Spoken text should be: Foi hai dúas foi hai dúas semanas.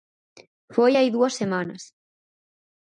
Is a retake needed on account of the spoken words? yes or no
yes